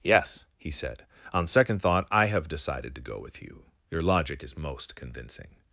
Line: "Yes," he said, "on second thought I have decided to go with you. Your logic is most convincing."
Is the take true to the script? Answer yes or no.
yes